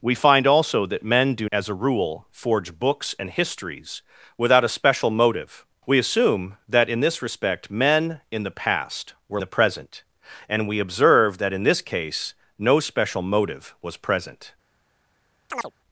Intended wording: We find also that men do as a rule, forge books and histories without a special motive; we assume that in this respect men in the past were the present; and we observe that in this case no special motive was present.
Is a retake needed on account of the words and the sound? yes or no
yes